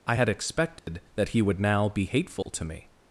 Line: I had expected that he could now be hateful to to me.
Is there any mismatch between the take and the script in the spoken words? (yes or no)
yes